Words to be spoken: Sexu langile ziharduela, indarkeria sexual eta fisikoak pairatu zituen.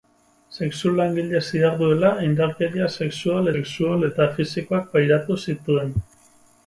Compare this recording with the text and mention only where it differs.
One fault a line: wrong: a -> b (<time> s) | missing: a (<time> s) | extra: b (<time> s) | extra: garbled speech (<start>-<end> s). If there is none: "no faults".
extra: sexual (3.6 s)